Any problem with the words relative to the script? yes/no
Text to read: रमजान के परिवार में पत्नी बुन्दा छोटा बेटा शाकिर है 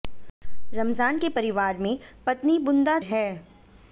yes